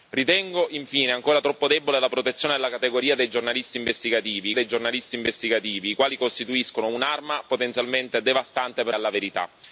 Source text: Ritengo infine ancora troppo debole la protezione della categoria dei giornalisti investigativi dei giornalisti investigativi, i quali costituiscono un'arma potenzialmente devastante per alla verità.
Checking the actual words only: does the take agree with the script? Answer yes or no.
yes